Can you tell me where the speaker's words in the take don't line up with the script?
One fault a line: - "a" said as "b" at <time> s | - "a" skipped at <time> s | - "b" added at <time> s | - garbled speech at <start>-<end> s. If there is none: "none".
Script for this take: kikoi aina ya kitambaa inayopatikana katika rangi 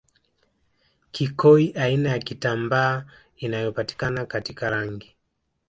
none